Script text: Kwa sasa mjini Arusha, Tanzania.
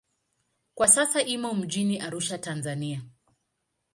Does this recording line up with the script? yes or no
no